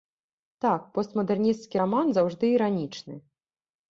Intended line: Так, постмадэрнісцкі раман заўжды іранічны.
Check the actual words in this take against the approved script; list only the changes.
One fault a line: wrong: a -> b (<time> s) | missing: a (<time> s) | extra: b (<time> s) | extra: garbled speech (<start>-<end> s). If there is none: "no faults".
no faults